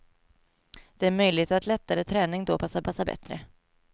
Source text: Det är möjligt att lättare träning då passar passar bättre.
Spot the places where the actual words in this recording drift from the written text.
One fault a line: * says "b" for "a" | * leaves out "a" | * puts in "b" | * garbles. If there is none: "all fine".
all fine